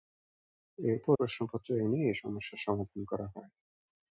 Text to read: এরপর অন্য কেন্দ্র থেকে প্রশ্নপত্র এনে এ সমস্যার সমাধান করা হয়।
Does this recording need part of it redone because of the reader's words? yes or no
yes